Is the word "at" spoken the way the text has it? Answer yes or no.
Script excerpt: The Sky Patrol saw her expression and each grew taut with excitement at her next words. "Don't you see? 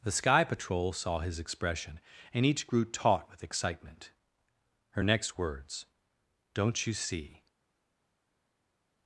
no